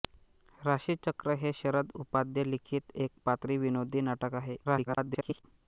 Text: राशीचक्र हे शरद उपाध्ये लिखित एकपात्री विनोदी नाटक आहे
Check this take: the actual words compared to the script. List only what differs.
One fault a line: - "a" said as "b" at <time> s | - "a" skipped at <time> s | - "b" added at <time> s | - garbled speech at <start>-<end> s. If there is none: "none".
- garbled speech at 4.6-5.4 s